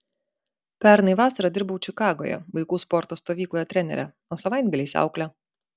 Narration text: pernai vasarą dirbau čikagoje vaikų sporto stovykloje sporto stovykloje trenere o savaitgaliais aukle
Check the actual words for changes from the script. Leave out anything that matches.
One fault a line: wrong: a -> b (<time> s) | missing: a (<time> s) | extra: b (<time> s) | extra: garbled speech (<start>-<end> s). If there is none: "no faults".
missing: sporto stovykloje (3.7 s)